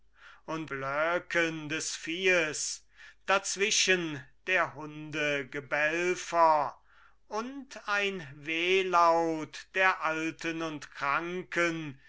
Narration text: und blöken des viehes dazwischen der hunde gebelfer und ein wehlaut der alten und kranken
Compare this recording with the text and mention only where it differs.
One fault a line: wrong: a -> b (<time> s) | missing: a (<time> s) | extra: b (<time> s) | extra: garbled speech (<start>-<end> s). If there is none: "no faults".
no faults